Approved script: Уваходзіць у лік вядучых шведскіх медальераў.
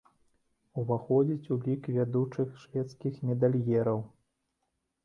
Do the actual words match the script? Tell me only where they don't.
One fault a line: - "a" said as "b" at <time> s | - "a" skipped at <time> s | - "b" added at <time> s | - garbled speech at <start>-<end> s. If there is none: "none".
none